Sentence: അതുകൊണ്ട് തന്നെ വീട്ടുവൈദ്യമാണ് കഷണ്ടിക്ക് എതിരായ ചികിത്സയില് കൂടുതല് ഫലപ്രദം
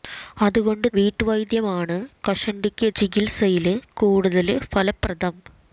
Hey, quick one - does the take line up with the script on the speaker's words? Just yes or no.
no